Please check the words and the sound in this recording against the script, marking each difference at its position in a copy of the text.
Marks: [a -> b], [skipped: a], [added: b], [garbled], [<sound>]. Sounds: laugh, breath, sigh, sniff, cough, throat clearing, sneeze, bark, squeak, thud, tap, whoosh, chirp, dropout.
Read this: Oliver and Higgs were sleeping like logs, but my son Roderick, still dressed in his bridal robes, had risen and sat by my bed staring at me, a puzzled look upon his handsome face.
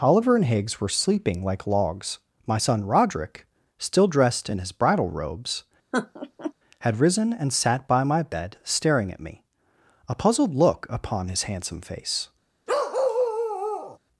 Oliver and Higgs were sleeping like logs, [skipped: but] my son Roderick, still dressed in his bridal robes, [laugh] had risen and sat by my bed staring at me, a puzzled look upon his handsome face. [bark]